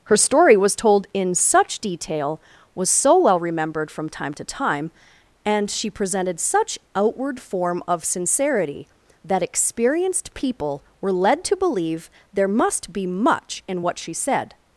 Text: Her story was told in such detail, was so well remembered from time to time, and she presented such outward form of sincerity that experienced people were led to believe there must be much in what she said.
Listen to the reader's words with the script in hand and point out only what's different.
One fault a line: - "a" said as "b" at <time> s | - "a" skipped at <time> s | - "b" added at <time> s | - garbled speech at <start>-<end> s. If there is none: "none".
none